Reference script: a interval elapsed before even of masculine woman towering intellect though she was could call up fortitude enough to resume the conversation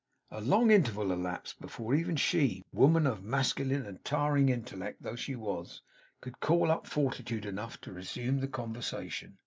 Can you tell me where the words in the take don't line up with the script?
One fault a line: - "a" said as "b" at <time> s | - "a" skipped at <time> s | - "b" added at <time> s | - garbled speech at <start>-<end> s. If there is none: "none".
- "long" added at 0.4 s
- "she woman" added at 2.1 s
- "woman" said as "and" at 3.9 s